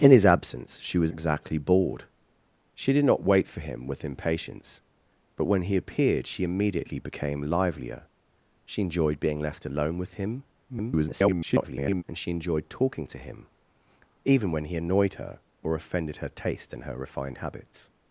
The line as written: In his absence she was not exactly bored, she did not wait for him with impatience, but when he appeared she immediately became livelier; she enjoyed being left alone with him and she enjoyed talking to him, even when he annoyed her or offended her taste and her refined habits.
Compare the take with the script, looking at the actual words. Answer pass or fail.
fail